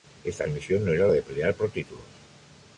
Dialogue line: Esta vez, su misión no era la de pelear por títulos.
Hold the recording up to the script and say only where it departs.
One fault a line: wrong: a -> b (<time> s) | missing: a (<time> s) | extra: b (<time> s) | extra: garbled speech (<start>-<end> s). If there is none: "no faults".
missing: vez (0.5 s)